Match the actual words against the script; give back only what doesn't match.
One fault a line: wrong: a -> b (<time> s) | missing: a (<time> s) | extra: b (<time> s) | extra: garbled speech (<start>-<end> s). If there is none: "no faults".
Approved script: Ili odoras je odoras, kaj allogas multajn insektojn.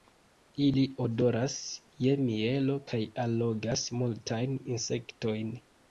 wrong: odoras -> mielo (2.3 s)